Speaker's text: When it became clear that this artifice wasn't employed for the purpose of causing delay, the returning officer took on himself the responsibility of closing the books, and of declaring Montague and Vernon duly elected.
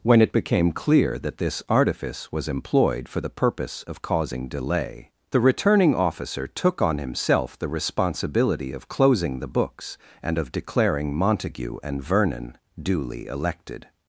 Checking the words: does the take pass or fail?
fail